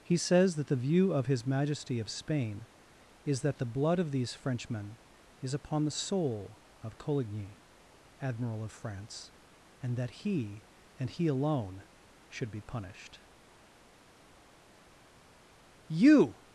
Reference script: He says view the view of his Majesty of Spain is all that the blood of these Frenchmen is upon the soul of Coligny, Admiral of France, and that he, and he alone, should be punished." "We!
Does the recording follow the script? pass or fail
fail